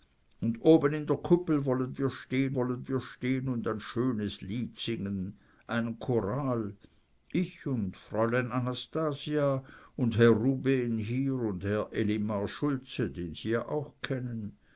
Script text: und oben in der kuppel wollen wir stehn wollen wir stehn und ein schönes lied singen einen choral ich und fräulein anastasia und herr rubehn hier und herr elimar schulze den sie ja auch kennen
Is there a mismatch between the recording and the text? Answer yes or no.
no